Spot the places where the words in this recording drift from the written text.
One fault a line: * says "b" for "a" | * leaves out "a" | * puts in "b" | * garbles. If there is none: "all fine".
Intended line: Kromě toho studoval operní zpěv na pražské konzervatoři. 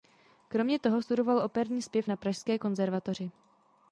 all fine